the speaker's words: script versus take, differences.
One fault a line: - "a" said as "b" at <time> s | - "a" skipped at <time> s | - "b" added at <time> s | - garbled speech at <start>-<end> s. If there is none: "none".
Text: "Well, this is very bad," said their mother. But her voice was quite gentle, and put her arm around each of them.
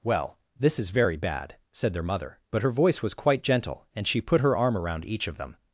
- "she" added at 4.1 s